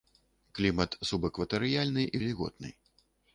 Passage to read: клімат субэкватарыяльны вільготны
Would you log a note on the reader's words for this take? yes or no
no